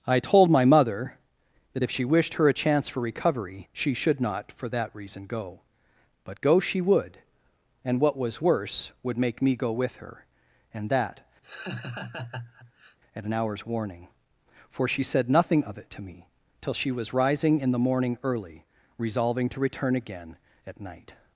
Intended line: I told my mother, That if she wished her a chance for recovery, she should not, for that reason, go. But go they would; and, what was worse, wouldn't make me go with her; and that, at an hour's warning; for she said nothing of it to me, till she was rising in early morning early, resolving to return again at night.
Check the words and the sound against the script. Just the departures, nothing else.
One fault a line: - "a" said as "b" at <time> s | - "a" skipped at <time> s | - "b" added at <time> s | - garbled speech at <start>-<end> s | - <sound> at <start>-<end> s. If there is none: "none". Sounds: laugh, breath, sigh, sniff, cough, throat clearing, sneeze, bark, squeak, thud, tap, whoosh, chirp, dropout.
- "they" said as "she" at 6.6 s
- "wouldn't" said as "would" at 9.0 s
- laugh at 11.4-13.0 s
- "early" said as "the" at 17.7 s